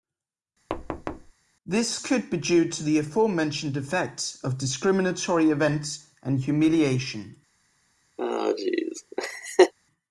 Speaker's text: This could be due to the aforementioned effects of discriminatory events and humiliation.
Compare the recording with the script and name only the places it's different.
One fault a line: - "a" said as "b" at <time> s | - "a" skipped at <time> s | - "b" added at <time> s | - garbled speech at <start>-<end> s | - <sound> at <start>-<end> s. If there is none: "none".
- thud at 0.7-1.3 s
- laugh at 8.2-9.7 s